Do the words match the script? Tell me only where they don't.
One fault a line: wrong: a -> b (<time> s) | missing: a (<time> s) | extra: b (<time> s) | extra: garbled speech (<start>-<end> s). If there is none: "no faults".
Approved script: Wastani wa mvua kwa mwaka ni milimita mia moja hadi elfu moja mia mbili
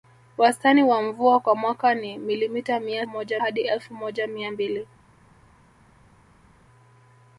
no faults